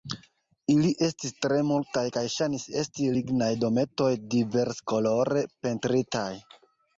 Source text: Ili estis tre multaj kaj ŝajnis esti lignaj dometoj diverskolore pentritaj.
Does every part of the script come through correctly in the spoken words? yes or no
yes